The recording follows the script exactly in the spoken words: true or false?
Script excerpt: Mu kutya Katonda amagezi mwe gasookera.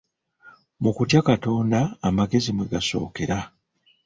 true